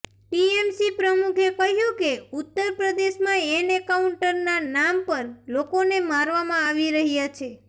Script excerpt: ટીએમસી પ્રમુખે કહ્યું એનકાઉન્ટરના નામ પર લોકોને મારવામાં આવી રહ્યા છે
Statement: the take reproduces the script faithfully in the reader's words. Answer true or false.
false